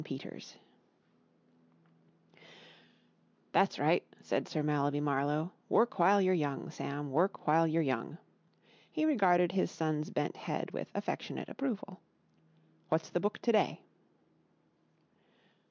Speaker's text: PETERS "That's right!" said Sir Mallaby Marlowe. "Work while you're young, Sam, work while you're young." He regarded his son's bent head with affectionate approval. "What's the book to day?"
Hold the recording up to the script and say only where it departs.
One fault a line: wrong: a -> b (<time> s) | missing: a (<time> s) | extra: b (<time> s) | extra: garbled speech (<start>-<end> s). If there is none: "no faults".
no faults